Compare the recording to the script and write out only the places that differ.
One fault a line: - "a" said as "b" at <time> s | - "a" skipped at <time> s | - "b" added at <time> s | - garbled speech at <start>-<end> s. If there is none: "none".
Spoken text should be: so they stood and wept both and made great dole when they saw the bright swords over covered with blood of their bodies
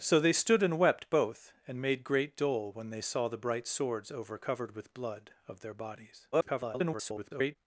- garbled speech at 6.3-7.6 s